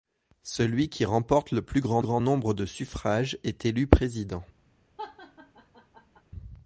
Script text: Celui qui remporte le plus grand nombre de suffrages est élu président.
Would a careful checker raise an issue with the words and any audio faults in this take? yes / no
yes